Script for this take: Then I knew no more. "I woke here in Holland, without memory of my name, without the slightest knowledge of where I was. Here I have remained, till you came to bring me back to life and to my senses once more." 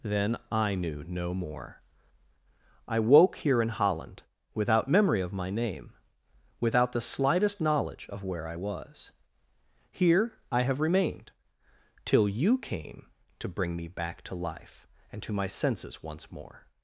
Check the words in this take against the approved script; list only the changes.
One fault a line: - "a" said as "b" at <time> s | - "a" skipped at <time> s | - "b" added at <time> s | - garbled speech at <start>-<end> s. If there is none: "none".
none